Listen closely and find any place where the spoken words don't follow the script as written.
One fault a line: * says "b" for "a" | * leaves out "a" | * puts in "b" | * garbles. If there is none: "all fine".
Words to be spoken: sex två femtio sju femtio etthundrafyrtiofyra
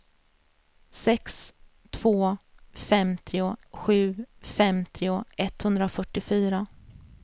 all fine